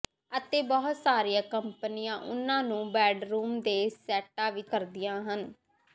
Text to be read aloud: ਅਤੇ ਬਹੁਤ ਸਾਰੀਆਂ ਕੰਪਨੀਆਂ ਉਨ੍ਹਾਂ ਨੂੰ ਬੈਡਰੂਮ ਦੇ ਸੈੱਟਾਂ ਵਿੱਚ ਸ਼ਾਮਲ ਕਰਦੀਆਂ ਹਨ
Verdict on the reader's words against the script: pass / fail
fail